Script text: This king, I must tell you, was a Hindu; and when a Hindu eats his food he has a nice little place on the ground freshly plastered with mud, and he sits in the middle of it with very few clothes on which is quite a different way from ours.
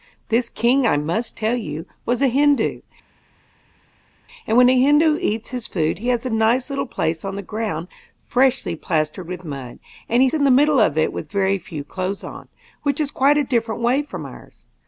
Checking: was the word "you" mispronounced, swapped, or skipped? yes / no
no